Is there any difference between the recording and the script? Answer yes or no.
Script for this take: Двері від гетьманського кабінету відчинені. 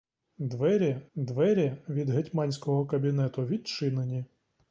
yes